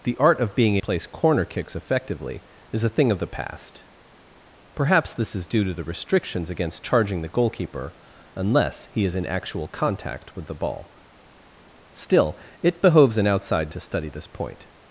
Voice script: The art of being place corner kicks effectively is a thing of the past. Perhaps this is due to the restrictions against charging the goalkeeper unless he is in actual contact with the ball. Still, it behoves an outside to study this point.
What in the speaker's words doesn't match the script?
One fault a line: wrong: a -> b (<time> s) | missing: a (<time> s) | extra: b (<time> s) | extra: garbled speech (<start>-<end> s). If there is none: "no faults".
no faults